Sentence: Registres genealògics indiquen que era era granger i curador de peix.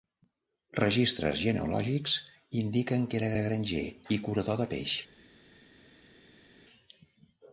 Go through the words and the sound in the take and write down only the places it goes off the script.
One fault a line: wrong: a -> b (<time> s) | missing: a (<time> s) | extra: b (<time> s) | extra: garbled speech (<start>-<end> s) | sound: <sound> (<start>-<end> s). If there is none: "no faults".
no faults